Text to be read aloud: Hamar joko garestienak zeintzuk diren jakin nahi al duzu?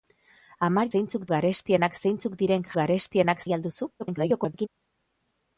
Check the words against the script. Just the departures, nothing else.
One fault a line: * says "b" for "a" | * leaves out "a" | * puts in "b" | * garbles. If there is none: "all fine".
* says "zeintzuk" for "joko"
* says "garestienak" for "jakin"
* garbles